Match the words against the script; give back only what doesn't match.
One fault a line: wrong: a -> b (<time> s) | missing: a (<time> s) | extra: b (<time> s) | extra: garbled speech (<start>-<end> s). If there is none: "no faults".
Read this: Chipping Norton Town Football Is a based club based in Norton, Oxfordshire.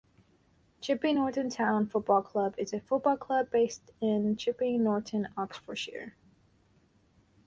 extra: Club (2.2 s)
wrong: based -> football (2.8 s)
extra: Chipping (4.4 s)